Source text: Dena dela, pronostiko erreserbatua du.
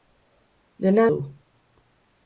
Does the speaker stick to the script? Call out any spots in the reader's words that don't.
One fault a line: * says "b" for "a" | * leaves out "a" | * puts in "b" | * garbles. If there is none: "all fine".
* leaves out "dela pronostiko erreserbatua"